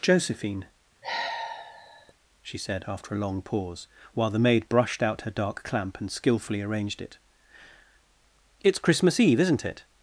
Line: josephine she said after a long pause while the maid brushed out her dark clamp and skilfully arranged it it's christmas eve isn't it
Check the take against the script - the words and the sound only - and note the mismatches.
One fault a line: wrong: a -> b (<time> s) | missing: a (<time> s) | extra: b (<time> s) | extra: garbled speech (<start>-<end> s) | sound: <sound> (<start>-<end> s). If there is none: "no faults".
sound: sigh (1.0-2.1 s)